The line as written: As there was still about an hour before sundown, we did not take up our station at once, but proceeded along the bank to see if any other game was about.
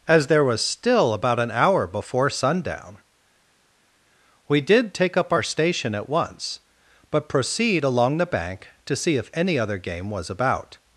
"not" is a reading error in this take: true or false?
true